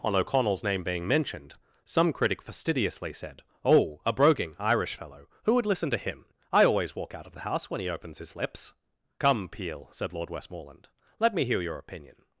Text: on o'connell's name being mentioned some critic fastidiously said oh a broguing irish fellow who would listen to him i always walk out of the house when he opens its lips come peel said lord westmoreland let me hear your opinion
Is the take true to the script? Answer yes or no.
no